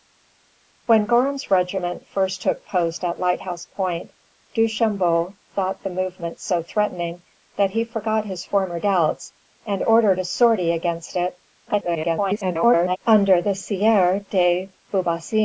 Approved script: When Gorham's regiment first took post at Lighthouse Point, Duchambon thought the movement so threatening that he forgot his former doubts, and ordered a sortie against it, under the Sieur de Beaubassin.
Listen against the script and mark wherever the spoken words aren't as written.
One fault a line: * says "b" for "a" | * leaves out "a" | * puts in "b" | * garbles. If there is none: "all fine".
* garbles